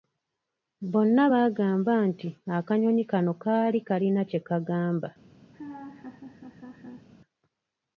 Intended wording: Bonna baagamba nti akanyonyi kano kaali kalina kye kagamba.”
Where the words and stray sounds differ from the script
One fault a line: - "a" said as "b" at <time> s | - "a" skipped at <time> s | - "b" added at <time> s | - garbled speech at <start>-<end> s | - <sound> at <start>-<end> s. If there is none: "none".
- laugh at 5.5-7.1 s